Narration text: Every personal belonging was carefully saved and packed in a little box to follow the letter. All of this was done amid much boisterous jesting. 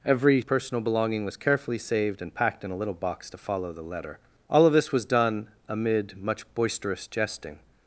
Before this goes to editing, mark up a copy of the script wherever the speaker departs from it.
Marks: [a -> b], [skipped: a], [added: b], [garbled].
Every personal belonging was carefully saved and packed in a little box to follow the letter. All of this was done amid much boisterous jesting.